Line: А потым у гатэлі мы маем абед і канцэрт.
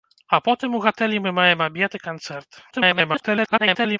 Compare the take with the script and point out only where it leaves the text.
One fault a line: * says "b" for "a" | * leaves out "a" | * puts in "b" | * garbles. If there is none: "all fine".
* garbles